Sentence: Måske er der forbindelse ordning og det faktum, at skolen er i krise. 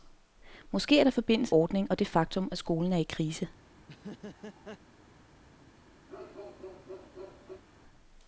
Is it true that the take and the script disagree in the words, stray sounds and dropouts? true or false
true